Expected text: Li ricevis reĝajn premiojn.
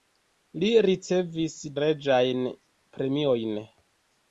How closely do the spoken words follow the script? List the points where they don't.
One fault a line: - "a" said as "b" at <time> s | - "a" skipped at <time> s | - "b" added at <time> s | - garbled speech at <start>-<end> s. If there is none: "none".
none